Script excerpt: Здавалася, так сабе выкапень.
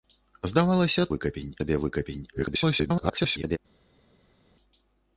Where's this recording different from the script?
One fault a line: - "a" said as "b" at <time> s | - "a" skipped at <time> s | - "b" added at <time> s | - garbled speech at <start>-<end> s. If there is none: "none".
- "так" said as "выкапень" at 1.1 s
- garbled speech at 2.3-3.6 s